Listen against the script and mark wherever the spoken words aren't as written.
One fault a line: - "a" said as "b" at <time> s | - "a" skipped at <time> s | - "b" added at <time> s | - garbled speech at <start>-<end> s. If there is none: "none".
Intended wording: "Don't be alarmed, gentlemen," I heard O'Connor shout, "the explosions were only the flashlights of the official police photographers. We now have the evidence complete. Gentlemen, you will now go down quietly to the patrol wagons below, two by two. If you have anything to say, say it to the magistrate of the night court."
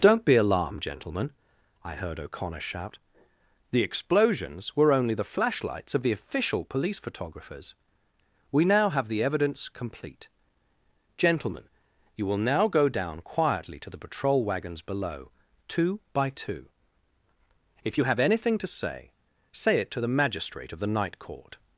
none